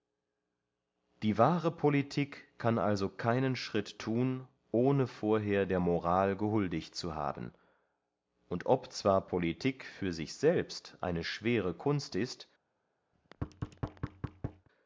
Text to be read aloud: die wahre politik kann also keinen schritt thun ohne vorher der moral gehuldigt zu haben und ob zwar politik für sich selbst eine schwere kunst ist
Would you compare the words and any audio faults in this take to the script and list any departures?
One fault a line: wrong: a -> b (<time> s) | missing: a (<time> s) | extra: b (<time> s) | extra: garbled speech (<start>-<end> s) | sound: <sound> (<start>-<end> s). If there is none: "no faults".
sound: thud (13.1-14.7 s)